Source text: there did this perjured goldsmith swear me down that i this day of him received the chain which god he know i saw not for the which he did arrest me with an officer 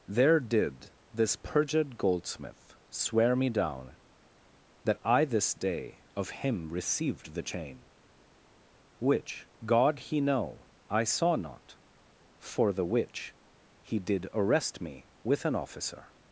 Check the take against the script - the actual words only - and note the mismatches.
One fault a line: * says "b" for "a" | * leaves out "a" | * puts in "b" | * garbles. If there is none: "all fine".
all fine